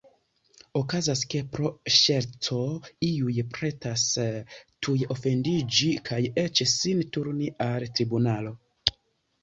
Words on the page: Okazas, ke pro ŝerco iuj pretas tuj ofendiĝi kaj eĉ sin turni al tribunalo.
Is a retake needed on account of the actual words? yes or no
no